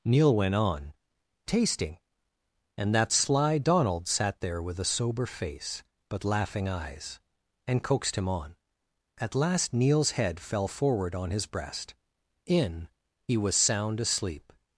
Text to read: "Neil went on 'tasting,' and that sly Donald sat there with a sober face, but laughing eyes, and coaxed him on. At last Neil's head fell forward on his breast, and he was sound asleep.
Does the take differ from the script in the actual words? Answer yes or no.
yes